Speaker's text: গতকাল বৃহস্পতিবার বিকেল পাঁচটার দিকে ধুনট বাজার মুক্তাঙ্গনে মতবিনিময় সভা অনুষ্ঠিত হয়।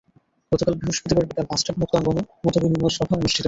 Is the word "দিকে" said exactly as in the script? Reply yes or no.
no